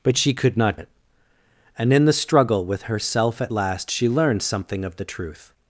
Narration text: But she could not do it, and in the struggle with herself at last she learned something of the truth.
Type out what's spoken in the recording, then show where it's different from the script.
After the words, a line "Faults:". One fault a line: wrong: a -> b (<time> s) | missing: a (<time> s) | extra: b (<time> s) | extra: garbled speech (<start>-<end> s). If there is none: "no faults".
But she could not it, and in the struggle with herself at last she learned something of the truth.
Faults:
missing: do (0.8 s)